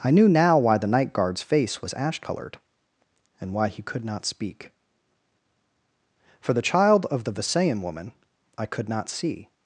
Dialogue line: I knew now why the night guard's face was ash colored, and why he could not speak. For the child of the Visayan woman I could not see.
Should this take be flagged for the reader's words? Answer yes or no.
no